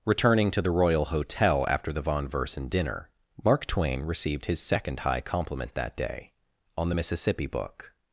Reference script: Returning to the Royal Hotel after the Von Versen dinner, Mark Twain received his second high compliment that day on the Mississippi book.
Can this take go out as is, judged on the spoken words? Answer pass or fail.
pass